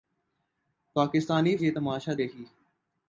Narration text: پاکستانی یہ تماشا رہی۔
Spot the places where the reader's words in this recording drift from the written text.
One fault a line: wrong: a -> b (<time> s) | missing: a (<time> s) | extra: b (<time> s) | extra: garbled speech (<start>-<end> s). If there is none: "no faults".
no faults